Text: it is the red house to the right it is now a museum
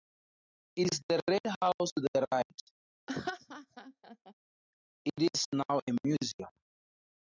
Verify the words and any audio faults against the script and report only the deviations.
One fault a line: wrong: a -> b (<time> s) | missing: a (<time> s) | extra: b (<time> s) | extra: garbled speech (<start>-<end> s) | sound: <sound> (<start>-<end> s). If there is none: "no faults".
sound: laugh (3.1-4.3 s)